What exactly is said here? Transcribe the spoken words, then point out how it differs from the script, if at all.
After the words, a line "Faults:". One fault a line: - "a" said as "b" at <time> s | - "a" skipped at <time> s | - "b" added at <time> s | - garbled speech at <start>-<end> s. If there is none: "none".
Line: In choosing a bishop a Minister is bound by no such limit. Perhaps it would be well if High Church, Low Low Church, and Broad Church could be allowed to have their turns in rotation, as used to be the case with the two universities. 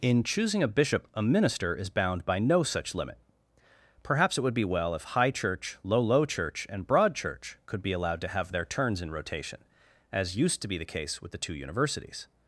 In choosing a bishop a Minister is bound by no such limit. Perhaps it would be well if High Church, Low Low Church, and Broad Church could be allowed to have their turns in rotation, as used to be the case with the two universities.
Faults:
none